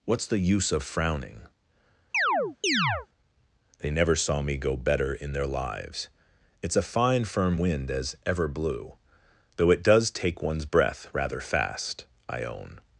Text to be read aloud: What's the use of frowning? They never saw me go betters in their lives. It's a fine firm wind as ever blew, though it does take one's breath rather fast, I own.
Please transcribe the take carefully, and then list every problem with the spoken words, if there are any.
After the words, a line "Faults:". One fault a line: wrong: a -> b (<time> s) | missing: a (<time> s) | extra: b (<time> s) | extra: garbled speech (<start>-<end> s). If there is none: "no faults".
What's the use of frowning? They never saw me go better in their lives. It's a fine firm wind as ever blew, though it does take one's breath rather fast, I own.
Faults:
wrong: betters -> better (4.8 s)